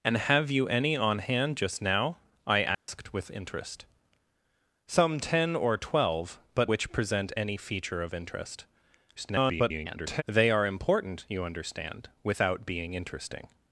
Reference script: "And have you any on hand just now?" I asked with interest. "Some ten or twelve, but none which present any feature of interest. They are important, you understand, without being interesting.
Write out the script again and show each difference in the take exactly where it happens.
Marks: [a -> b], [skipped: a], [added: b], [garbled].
"And have you any on hand just now?" I asked with interest. "Some ten or twelve, but [skipped: none] which present any feature of interest. [garbled] They are important, you understand, without being interesting.